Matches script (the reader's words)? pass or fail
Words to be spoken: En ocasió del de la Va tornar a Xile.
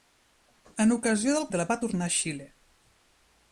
pass